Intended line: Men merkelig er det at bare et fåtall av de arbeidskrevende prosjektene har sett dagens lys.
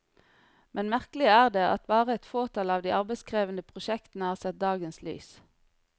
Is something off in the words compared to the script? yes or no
no